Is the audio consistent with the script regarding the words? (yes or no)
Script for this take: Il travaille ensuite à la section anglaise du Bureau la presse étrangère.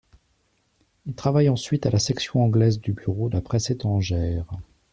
yes